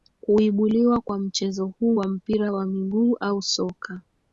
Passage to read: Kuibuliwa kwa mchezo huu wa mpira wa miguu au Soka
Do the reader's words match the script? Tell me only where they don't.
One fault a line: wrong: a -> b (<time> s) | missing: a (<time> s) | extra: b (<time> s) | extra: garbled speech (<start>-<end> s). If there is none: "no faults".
no faults